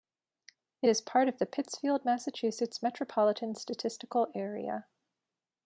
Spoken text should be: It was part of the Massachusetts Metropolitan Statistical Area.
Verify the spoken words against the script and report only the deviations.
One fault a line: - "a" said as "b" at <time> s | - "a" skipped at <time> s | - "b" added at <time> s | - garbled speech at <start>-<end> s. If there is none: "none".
- "was" said as "is" at 0.9 s
- "Pittsfield" added at 1.5 s